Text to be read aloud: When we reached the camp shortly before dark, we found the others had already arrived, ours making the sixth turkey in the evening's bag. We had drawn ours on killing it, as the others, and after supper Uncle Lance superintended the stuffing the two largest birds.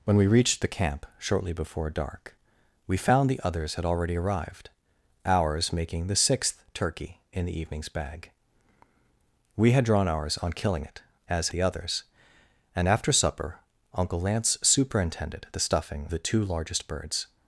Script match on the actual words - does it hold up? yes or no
yes